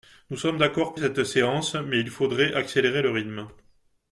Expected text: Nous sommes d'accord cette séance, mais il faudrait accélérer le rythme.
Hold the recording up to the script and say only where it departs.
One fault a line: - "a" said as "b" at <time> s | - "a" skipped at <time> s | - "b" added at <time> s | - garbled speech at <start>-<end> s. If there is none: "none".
none